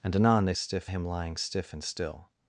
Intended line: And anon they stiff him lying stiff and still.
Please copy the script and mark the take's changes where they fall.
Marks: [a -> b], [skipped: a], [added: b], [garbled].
And anon they stiff him lying stiff and still.